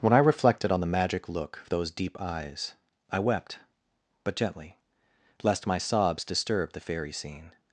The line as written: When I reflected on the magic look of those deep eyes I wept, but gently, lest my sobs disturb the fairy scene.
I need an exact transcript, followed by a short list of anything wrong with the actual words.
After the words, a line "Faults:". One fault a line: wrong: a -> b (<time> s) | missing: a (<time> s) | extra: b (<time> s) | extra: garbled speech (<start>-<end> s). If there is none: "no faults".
When I reflected on the magic look of those deep eyes I wept, but gently, lest my sobs disturb the fairy scene.
Faults:
no faults